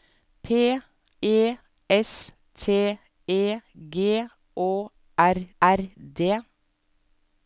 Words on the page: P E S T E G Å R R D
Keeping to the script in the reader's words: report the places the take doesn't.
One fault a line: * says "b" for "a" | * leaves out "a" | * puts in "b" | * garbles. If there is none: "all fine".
all fine